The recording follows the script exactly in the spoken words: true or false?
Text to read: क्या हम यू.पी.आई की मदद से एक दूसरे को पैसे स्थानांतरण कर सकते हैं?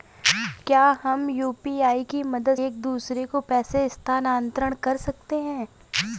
false